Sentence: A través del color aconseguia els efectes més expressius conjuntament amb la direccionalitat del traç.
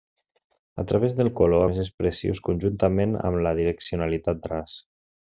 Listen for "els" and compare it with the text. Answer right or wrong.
wrong